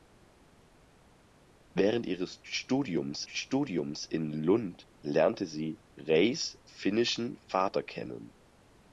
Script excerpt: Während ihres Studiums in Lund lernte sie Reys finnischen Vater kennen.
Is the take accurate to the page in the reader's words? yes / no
no